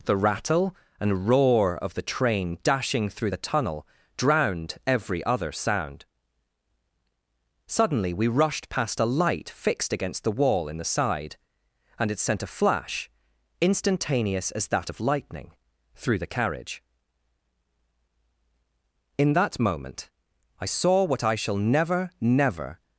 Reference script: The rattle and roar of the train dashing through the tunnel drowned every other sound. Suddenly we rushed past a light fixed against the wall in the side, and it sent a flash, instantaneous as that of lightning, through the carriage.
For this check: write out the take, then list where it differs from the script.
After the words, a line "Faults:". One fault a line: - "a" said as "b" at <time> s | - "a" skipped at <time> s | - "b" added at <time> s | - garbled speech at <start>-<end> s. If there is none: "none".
The rattle and roar of the train dashing through the tunnel drowned every other sound. Suddenly we rushed past a light fixed against the wall in the side, and it sent a flash, instantaneous as that of lightning, through the carriage. In that moment I saw what I shall never, never
Faults:
- "In that moment I saw what I shall never never" added at 19.2 s